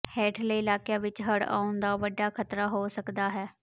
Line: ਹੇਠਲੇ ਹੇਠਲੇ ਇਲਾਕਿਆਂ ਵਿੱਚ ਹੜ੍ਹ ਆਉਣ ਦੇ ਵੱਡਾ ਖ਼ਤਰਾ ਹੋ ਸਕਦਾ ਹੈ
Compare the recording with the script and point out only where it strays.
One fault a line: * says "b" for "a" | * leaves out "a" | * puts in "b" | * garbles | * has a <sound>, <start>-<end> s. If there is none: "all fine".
* leaves out "ਹੇਠਲੇ"
* says "ਦਾ" for "ਦੇ"